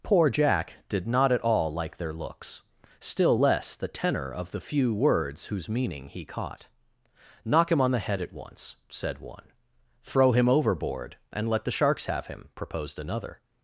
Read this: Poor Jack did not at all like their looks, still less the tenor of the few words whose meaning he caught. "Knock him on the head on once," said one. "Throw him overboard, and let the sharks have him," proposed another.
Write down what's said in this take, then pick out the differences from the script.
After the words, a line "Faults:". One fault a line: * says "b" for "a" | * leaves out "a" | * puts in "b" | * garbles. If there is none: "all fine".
Poor Jack did not at all like their looks, still less the tenor of the few words whose meaning he caught. "Knock him on the head at once," said one. "Throw him overboard, and let the sharks have him," proposed another.
Faults:
* says "at" for "on"